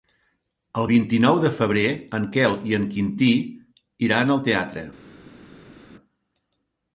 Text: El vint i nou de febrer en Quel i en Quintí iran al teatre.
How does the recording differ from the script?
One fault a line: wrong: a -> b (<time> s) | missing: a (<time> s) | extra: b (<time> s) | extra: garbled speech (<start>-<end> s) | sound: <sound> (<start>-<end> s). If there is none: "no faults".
no faults